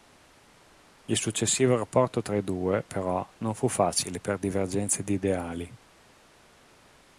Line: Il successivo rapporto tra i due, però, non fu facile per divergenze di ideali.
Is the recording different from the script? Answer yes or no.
no